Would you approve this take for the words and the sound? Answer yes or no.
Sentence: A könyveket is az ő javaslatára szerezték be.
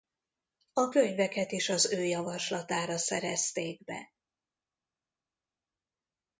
yes